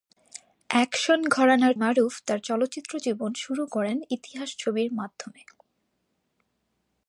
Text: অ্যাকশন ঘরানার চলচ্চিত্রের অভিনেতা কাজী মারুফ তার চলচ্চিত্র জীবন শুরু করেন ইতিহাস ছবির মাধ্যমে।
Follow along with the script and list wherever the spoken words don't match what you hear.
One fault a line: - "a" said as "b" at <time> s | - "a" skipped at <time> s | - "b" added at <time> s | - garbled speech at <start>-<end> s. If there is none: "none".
- "চলচ্চিত্রের অভিনেতা কাজী" skipped at 1.7 s